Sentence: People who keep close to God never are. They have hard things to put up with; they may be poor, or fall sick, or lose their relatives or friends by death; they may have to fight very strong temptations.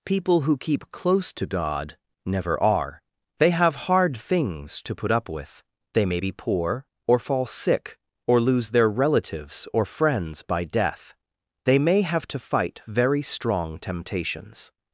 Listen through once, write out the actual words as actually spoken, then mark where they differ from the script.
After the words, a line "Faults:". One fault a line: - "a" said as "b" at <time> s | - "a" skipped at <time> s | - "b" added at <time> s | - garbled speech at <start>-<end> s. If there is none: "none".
People who keep close to God never are. They have hard things to put up with; they may be poor, or fall sick, or lose their relatives or friends by death; they may have to fight very strong temptations.
Faults:
none